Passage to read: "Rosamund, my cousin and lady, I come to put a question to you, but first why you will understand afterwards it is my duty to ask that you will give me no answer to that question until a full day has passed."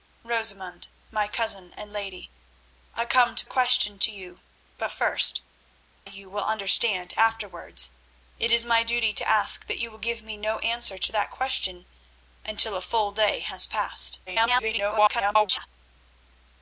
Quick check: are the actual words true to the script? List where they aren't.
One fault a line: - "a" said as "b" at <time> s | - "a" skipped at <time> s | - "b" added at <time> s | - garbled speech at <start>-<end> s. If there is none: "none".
- "put" skipped at 3.5 s
- "why" skipped at 5.4 s
- garbled speech at 14.3-15.7 s